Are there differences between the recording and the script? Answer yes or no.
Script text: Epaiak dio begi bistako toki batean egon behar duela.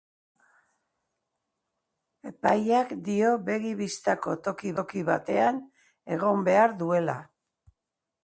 yes